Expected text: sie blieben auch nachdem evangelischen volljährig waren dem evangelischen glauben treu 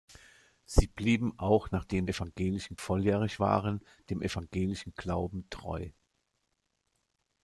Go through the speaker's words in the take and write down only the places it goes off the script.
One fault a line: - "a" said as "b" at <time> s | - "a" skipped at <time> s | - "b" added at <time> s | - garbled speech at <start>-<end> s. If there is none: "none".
none